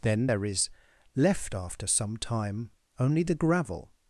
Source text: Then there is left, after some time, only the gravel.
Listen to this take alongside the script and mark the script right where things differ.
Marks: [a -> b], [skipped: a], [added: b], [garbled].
Then there is left, after some time, only the gravel.